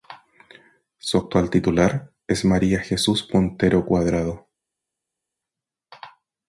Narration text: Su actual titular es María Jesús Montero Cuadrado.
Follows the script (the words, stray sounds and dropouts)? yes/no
yes